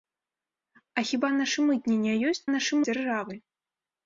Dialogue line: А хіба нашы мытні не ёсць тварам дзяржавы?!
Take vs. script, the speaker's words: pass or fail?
fail